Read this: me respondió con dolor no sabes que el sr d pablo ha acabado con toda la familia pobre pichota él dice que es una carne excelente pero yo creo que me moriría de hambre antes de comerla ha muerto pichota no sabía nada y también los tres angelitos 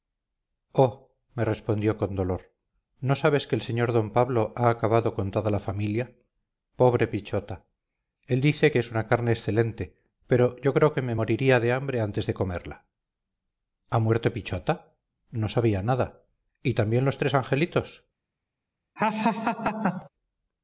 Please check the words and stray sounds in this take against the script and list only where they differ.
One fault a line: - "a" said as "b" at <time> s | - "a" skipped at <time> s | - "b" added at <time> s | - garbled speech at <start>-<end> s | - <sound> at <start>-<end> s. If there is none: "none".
- laugh at 19.0-20.1 s